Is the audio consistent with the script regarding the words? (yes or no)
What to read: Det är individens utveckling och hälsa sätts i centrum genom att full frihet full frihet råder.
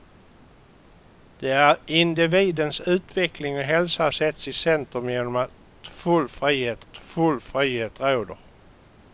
yes